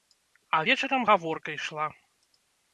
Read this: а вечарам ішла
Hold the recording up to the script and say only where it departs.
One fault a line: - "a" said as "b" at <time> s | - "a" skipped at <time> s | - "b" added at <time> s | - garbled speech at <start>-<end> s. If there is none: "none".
- "гаворка" added at 1.1 s